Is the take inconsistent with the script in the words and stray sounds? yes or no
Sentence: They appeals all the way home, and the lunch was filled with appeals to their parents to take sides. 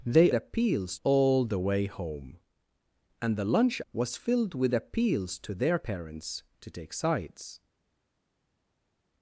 no